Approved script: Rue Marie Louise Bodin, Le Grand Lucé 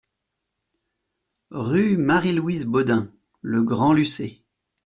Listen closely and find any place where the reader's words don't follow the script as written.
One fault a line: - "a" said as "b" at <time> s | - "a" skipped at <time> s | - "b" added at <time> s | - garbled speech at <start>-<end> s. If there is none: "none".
none